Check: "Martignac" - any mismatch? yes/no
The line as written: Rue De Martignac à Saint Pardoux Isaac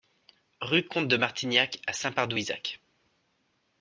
no